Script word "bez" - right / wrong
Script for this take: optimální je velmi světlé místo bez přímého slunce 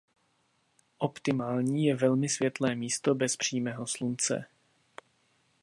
right